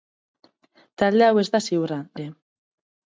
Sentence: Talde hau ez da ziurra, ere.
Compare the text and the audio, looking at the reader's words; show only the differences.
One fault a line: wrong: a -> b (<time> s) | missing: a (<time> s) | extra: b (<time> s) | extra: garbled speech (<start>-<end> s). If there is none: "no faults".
no faults